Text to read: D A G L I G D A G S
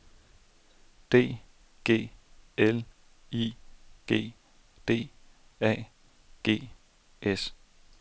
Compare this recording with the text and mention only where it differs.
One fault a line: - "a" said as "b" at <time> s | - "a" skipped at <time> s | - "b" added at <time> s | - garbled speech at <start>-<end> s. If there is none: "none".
- "A" skipped at 1.4 s